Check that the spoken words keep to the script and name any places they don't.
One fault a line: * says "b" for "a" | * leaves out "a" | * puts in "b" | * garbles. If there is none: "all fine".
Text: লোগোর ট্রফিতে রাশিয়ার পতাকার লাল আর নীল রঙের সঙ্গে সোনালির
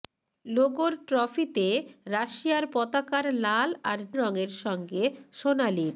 * leaves out "নীল"